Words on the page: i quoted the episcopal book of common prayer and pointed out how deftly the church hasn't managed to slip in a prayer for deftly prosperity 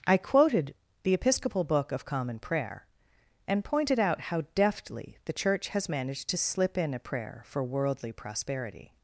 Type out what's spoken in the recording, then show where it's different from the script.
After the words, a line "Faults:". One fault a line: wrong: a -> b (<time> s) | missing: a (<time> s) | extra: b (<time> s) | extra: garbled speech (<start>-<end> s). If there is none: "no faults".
i quoted the episcopal book of common prayer and pointed out how deftly the church has managed to slip in a prayer for worldly prosperity
Faults:
wrong: hasn't -> has (5.7 s)
wrong: deftly -> worldly (7.6 s)